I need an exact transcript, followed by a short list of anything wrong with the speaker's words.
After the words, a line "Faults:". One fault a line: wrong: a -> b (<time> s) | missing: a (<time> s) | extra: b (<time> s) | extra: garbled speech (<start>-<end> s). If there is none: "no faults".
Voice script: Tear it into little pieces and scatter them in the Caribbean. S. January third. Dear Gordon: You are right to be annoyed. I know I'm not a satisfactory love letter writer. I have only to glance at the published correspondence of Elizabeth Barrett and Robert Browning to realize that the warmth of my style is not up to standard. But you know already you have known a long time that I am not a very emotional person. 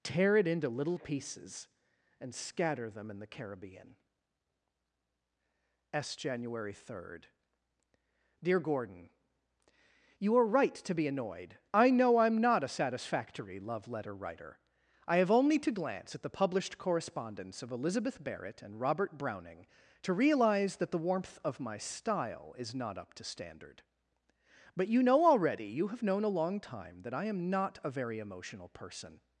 Tear it into little pieces and scatter them in the Caribbean. S. January third. Dear Gordon: You are right to be annoyed. I know I'm not a satisfactory love letter writer. I have only to glance at the published correspondence of Elizabeth Barrett and Robert Browning to realize that the warmth of my style is not up to standard. But you know already you have known a long time that I am not a very emotional person.
Faults:
no faults